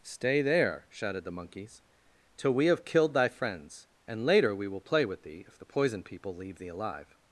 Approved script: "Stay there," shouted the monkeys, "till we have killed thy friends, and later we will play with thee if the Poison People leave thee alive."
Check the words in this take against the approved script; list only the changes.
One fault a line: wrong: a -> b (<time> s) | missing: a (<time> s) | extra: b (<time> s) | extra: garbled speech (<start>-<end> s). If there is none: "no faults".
no faults